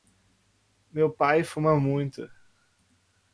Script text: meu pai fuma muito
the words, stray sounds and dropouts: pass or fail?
pass